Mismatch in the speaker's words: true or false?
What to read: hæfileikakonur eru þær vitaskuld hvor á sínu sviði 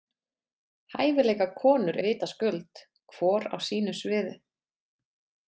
true